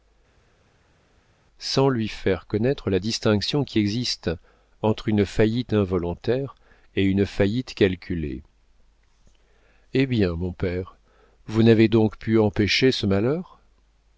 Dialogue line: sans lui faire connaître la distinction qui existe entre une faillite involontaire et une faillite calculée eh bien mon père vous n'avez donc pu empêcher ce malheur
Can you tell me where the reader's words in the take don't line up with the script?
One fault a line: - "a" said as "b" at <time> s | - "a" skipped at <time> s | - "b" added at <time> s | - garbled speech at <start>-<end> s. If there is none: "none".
none